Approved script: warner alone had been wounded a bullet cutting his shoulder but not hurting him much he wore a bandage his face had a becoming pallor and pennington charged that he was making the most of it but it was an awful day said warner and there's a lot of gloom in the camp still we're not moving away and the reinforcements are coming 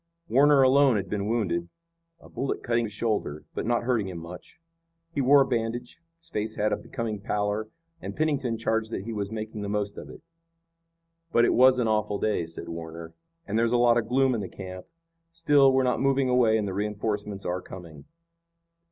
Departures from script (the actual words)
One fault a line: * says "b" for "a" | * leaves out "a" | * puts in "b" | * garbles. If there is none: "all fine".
all fine